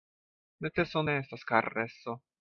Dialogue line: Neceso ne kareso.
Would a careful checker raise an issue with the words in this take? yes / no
yes